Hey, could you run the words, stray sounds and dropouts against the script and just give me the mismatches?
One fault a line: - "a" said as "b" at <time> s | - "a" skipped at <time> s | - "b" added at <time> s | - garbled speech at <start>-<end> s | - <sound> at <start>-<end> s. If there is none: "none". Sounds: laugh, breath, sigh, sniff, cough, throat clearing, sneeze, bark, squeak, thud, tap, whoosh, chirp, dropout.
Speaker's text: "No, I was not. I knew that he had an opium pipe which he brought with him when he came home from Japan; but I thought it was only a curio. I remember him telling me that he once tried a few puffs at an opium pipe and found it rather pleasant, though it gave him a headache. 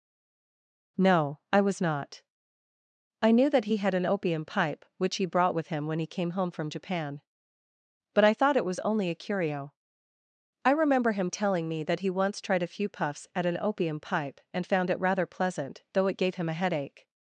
none